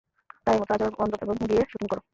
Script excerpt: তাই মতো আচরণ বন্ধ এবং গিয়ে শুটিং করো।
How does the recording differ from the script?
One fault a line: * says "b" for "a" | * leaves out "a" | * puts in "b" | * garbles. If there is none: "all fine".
all fine